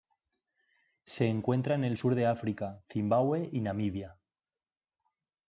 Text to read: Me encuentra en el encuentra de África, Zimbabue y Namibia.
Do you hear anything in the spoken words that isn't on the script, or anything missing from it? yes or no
yes